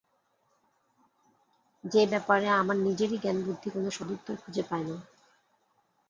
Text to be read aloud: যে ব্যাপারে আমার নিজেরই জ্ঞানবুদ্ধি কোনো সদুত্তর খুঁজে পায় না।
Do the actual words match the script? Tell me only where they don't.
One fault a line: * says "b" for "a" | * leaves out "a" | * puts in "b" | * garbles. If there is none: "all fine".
all fine